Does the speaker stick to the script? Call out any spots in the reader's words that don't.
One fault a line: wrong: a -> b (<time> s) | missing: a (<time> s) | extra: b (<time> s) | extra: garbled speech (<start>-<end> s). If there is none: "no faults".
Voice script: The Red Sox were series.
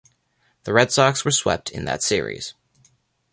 extra: swept in that (1.3 s)